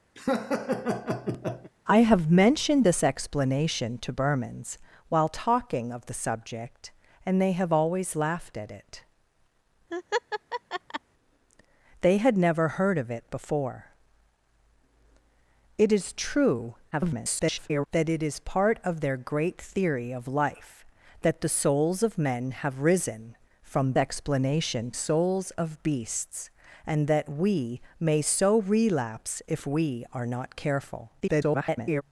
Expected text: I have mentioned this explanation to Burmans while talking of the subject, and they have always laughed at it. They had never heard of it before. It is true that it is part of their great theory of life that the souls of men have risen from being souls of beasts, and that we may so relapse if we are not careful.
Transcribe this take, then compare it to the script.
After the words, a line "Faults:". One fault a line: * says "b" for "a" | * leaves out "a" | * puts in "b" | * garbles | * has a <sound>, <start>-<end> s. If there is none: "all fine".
I have mentioned this explanation to Burmans while talking of the subject, and they have always laughed at it. They had never heard of it before. It is true [garbled] that it is part of their great theory of life that the souls of men have risen from explanation souls of beasts, and that we may so relapse if we are not careful. [garbled]
Faults:
* has a laugh, 0.2-1.7 s
* has a laugh, 9.9-11.0 s
* garbles
* says "explanation" for "being"
* garbles